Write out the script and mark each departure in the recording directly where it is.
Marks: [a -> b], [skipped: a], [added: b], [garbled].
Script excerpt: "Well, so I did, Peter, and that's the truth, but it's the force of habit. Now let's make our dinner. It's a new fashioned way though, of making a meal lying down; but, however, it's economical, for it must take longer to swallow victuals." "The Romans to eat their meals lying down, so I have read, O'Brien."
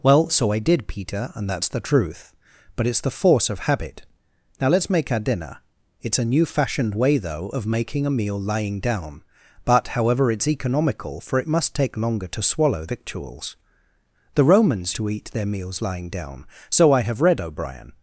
"Well, so I did, Peter, and that's the truth, but it's the force of habit. Now let's make our dinner. It's a new fashioned way though, of making a meal lying down; but, however, it's economical, for it must take longer to swallow victuals." "The Romans to eat their meals lying down, so I have read, O'Brien."